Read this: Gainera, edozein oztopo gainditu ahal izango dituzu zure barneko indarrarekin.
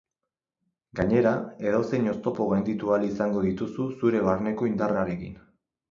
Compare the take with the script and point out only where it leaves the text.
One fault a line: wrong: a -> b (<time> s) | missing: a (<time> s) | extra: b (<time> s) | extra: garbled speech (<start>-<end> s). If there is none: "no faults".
no faults